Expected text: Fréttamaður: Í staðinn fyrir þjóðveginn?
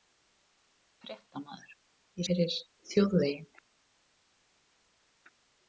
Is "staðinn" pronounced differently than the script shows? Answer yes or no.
yes